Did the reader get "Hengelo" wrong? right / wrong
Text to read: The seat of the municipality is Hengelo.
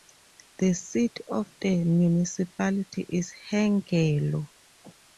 right